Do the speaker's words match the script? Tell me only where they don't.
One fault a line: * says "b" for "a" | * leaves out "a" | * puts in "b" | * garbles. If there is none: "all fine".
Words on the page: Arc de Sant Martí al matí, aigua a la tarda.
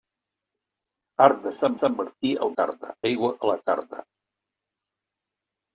* puts in "Sant"
* says "tarda" for "matí"